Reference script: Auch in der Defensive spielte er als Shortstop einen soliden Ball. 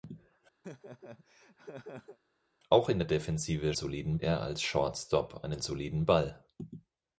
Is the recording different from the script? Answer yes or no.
yes